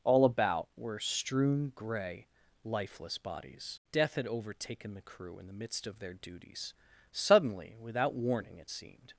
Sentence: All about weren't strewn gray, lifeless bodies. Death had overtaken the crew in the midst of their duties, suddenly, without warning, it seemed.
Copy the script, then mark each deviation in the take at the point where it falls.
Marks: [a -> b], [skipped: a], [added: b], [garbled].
All about [weren't -> were] strewn gray, lifeless bodies. Death had overtaken the crew in the midst of their duties, suddenly, without warning, it seemed.